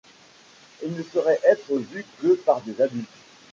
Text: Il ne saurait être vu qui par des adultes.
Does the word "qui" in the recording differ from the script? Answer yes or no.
yes